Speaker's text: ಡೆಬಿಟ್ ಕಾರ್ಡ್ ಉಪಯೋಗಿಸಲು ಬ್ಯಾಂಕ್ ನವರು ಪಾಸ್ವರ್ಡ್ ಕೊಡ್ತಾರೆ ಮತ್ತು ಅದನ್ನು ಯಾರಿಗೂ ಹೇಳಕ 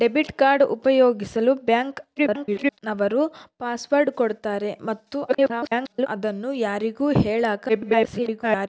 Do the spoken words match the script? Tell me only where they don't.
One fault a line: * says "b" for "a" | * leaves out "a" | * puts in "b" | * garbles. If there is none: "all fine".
* garbles
* garbles
* garbles